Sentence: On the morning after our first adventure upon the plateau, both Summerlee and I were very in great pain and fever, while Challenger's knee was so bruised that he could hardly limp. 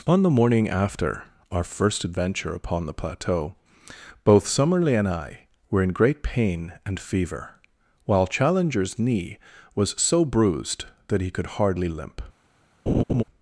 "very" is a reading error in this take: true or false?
true